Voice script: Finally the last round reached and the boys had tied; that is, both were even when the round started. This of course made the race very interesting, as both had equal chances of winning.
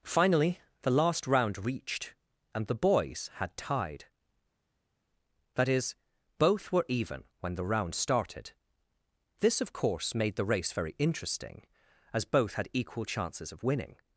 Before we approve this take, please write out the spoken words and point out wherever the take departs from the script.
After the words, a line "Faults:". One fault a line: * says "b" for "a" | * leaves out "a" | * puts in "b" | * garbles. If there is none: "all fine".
Finally the last round reached and the boys had tied; that is, both were even when the round started. This of course made the race very interesting, as both had equal chances of winning.
Faults:
all fine